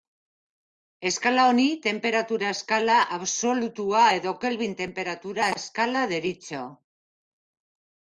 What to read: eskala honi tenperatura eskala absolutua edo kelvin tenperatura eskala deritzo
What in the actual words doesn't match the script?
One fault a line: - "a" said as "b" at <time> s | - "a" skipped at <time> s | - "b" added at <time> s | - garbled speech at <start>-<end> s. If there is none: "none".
none